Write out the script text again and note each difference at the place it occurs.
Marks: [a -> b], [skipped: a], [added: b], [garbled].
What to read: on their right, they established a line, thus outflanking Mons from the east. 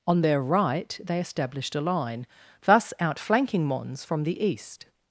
on their right, they established a line, thus outflanking Mons from the east.